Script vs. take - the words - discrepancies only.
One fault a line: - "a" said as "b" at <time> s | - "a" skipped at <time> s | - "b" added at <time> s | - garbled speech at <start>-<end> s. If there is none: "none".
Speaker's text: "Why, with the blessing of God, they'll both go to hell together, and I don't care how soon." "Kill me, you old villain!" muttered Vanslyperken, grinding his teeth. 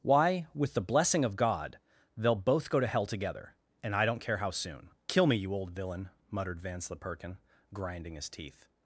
none